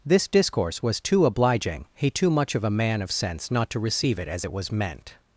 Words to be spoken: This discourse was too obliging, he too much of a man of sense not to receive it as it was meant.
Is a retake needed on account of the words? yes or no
no